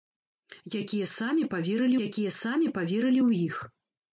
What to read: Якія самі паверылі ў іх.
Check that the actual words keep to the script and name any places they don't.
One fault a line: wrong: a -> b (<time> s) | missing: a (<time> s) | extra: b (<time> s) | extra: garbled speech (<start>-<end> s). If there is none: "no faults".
extra: якія самі паверылі (2.1 s)